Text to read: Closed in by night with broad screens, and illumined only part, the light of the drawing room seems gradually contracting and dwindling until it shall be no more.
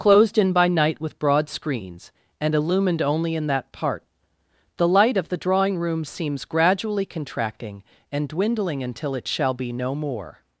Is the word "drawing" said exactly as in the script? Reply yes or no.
yes